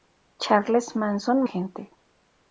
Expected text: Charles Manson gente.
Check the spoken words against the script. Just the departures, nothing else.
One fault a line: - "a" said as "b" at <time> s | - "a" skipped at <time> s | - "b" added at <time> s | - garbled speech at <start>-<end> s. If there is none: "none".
none